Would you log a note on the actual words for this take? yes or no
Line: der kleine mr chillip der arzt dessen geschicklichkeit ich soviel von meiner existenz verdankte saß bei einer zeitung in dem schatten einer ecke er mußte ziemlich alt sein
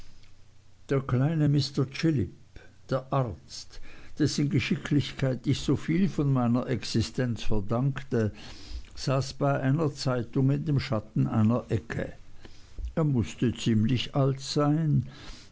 no